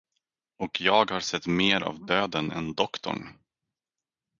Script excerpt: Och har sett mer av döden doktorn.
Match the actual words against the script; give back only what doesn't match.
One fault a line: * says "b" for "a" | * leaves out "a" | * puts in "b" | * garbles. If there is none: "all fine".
* puts in "jag"
* puts in "än"